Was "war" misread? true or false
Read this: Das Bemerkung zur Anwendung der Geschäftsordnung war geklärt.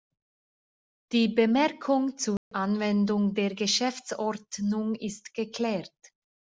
true